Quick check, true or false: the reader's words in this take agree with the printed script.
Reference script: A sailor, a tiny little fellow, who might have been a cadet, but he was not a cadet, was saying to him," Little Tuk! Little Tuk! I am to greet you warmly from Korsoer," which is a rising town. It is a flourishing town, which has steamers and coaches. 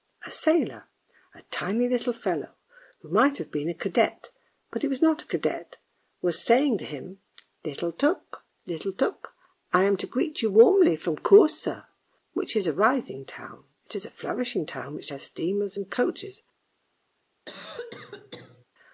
true